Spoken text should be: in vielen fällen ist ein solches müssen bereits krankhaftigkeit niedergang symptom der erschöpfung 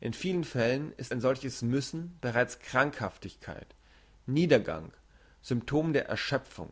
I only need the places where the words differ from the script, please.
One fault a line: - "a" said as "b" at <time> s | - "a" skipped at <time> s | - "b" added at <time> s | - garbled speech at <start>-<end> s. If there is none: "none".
none